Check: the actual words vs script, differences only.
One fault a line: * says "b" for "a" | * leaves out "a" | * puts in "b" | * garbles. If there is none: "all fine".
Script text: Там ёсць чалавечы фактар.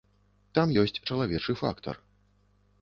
all fine